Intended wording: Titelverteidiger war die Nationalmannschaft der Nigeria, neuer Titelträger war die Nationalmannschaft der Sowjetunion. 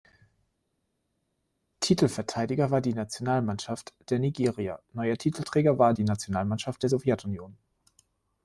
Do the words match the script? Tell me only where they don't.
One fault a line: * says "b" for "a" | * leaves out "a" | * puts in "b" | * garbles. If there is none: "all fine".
all fine